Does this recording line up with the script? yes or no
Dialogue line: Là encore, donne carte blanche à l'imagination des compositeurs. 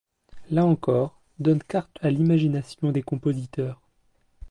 no